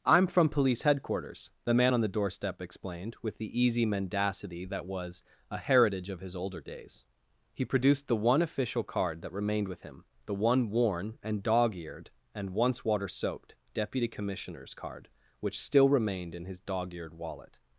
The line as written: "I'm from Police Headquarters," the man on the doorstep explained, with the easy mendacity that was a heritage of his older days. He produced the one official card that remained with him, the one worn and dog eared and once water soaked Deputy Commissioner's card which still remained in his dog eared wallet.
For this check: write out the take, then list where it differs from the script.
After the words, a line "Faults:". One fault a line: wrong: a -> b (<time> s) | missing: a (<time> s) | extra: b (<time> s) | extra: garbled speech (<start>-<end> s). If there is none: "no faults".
"I'm from Police Headquarters," the man on the doorstep explained, with the easy mendacity that was a heritage of his older days. He produced the one official card that remained with him, the one worn and dog eared and once water soaked Deputy Commissioner's card which still remained in his dog eared wallet.
Faults:
no faults